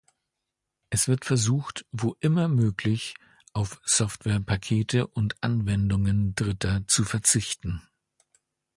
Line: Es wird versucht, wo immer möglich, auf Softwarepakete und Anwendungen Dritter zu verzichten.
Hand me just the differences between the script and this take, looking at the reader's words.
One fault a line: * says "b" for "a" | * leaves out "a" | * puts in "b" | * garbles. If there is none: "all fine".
all fine